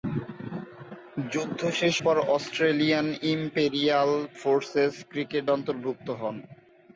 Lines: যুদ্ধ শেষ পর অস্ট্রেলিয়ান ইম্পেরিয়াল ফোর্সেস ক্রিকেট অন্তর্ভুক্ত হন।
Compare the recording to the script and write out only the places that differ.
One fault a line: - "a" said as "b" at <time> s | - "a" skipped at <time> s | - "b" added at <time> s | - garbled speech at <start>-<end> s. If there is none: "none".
none